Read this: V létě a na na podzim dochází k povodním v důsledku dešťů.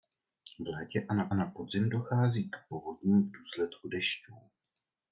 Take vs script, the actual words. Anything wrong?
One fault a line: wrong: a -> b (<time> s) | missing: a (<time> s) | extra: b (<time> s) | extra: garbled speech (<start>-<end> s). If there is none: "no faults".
no faults